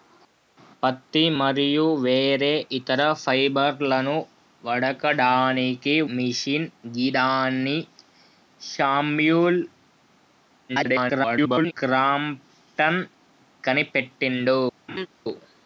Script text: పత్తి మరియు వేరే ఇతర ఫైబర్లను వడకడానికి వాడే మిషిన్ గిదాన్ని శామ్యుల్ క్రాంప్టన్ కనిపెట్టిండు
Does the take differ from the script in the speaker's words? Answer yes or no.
yes